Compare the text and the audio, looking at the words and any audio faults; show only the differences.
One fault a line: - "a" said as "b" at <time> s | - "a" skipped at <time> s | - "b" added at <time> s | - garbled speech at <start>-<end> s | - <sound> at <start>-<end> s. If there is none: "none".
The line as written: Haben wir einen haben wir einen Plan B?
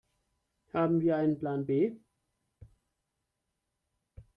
- "haben wir einen" skipped at 1.4 s